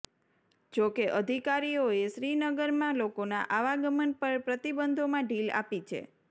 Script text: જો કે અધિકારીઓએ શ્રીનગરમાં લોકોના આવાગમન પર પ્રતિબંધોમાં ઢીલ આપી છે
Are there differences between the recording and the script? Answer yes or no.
no